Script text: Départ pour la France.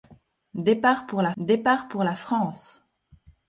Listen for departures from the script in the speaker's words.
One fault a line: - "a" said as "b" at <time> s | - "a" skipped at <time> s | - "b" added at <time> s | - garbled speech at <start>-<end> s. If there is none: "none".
- "départ pour la" added at 1.4 s